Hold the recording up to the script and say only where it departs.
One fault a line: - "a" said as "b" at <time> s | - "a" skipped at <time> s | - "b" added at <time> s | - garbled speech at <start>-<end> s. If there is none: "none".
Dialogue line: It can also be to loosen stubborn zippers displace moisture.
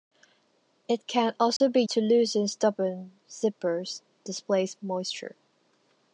none